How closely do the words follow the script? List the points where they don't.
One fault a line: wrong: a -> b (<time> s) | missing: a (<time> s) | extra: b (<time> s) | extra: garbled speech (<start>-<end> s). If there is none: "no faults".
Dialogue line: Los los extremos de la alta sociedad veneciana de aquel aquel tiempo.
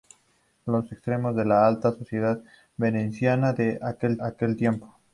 no faults